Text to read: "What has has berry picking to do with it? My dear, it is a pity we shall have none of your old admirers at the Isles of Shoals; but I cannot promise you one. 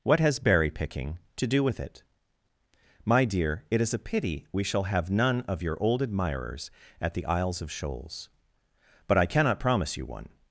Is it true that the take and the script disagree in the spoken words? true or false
true